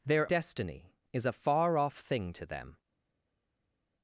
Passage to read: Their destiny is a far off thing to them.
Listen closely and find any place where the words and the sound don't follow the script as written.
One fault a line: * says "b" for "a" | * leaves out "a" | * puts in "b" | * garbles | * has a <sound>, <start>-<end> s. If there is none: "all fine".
all fine